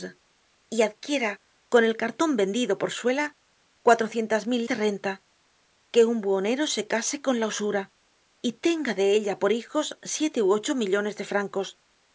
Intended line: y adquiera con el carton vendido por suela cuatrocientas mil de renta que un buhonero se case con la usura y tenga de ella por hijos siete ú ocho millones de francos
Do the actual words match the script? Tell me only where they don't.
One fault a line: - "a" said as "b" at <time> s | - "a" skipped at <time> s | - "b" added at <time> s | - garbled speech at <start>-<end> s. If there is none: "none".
none